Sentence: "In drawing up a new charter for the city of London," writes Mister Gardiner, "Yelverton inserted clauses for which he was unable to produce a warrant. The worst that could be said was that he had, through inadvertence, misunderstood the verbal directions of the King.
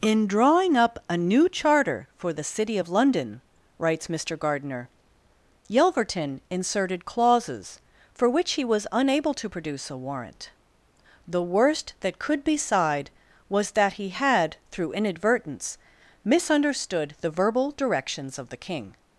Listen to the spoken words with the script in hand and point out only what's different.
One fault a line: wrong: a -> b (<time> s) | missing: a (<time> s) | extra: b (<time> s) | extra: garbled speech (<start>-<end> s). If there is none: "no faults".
wrong: said -> sighed (12.6 s)